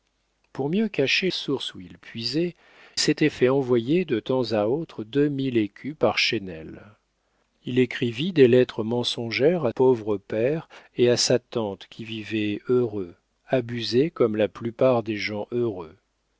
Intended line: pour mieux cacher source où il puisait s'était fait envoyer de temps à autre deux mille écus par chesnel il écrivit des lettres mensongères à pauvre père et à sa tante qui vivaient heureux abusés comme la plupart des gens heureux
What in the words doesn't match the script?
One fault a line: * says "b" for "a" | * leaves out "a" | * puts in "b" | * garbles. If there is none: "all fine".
all fine